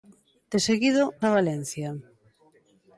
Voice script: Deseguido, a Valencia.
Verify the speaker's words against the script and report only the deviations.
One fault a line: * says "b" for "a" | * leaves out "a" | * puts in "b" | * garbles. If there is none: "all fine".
all fine